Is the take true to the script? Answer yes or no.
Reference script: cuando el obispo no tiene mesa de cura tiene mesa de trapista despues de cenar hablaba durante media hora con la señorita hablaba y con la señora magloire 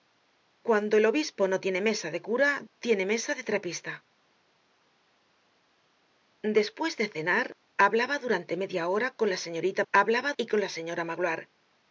yes